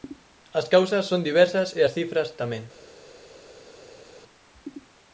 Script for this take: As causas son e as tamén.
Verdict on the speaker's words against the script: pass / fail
fail